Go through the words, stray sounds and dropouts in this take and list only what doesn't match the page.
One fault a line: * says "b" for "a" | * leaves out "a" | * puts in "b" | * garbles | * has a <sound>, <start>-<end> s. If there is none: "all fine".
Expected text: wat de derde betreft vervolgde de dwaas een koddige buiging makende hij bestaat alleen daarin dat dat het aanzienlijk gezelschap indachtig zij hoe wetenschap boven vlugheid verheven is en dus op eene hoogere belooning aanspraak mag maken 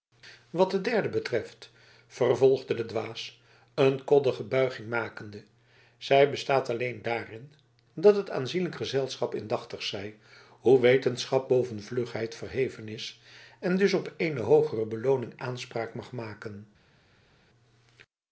* says "zij" for "hij"
* leaves out "dat"